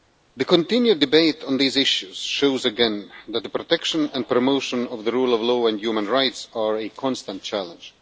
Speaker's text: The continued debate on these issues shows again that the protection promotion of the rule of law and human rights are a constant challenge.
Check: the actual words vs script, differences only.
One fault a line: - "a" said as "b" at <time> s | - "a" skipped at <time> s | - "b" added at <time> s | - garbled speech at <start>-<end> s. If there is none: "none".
- "and" added at 4.1 s